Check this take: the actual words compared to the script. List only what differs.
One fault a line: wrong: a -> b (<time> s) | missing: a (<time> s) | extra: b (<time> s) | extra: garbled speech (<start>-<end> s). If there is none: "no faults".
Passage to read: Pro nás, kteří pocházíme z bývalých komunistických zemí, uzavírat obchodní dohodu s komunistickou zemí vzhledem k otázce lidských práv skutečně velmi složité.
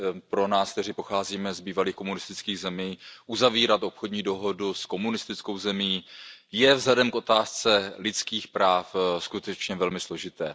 extra: je (6.5 s)